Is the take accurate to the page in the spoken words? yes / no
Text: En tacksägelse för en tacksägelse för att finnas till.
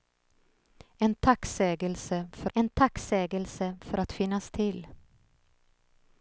yes